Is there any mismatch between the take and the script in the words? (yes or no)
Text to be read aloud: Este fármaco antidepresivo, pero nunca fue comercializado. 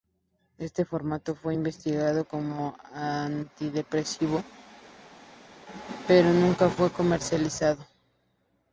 yes